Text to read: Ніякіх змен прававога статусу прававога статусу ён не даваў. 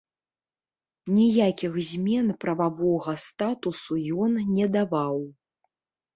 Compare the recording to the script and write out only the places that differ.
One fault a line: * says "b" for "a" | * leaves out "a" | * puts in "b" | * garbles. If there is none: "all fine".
* leaves out "прававога статусу"